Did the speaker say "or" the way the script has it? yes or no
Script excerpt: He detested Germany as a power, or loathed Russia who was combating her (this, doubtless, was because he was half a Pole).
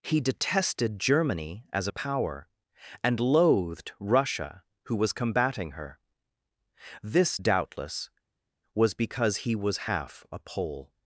no